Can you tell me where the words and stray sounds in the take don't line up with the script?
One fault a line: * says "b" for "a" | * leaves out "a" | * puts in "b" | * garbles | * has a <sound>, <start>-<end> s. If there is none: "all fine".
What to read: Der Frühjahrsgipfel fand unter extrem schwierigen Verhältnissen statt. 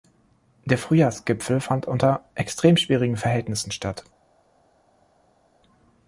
all fine